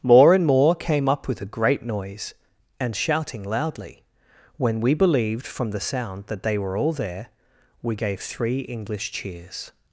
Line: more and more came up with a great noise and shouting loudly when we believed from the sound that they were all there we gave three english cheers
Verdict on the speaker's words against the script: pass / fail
pass